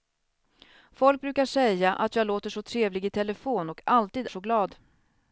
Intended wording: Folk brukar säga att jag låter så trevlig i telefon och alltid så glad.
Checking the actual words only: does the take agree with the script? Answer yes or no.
yes